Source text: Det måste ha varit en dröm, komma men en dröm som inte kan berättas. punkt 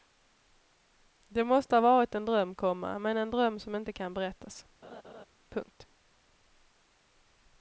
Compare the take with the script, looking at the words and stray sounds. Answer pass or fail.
fail